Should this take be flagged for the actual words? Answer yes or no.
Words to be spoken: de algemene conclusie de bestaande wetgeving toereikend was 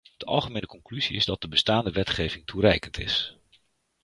yes